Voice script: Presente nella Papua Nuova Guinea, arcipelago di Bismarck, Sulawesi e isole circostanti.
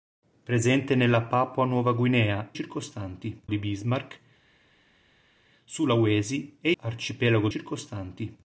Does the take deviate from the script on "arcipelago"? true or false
true